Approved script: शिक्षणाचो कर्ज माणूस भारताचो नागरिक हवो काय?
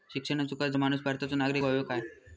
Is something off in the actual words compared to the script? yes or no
no